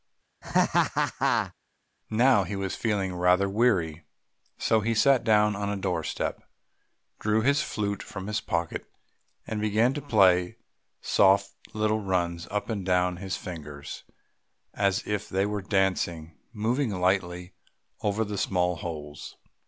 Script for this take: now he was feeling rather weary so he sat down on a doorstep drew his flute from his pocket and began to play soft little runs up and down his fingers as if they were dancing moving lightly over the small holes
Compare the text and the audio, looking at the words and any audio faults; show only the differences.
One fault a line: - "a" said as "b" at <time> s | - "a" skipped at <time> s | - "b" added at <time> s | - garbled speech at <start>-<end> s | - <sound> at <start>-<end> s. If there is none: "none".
- laugh at 0.4-1.5 s